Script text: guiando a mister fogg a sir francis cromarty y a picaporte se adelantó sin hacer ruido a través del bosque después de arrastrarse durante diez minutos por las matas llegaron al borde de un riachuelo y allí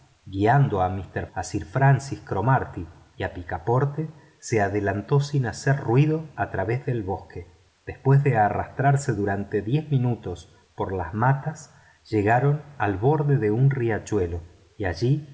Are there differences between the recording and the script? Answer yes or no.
yes